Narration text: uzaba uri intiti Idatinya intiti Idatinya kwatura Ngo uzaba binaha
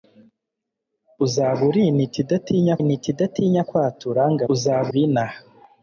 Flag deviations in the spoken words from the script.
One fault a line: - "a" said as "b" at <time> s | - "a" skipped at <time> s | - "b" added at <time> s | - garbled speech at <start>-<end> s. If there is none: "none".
none